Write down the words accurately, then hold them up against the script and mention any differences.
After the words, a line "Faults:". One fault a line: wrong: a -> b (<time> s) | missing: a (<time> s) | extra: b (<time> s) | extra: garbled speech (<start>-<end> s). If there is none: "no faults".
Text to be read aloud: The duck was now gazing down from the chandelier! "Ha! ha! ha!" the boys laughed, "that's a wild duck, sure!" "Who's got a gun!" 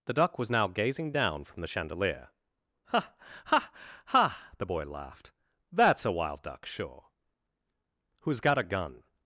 The duck was now gazing down from the chandelier! "Ha! ha! ha!" the boy laughed, "that's a wild duck, sure!" "Who's got a gun!"
Faults:
wrong: boys -> boy (4.7 s)